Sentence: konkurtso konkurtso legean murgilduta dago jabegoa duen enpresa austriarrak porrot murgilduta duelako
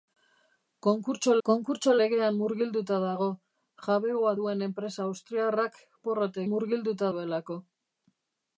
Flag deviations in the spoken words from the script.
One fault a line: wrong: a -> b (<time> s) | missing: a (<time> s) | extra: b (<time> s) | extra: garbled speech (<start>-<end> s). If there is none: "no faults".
no faults